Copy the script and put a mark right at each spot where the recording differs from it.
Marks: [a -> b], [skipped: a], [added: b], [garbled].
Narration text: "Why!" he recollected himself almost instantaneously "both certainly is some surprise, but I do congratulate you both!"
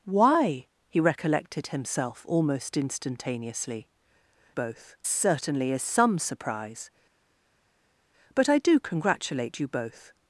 "Why!" he recollected himself almost instantaneously "both certainly is some surprise, but I do congratulate you both!"